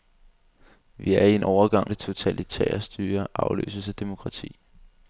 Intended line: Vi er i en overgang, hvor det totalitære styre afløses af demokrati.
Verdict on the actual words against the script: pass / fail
fail